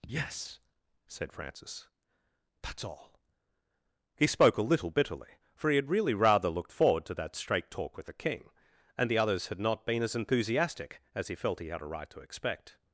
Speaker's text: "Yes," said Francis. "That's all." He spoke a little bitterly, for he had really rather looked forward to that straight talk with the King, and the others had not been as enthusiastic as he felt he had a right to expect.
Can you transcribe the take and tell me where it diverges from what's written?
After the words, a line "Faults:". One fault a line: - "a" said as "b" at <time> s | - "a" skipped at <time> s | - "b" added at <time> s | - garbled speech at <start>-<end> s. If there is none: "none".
"Yes," said Francis. "That's all." He spoke a little bitterly, for he had really rather looked forward to that straight talk with the King, and the others had not been as enthusiastic as he felt he had a right to expect.
Faults:
none